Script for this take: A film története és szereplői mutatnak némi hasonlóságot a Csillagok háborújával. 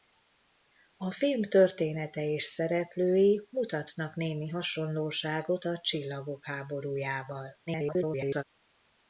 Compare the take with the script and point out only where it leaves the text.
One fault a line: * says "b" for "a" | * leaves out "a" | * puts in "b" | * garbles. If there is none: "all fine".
* garbles